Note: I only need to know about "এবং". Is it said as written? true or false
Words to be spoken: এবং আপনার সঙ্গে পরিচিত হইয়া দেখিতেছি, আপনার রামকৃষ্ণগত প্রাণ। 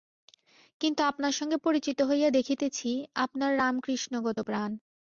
false